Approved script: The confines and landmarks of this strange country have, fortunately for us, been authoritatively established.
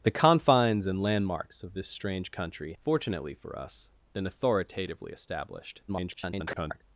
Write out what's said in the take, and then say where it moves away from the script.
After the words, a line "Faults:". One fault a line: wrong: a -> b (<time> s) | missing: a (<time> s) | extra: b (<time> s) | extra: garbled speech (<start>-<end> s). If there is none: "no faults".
The confines and landmarks of this strange country fortunately for us, been authoritatively established. [garbled]
Faults:
missing: have (2.7 s)
extra: garbled speech (5.9-6.8 s)